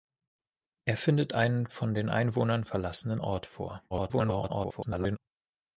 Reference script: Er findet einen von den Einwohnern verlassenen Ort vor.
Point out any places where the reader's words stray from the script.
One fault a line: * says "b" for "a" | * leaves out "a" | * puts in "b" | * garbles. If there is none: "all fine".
* garbles